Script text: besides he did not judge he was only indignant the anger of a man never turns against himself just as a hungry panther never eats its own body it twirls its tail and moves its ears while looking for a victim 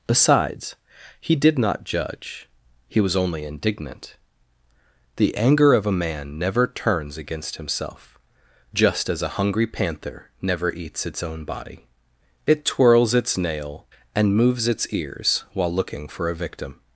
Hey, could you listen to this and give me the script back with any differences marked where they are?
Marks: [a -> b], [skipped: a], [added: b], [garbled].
besides he did not judge he was only indignant the anger of a man never turns against himself just as a hungry panther never eats its own body it twirls its [tail -> nail] and moves its ears while looking for a victim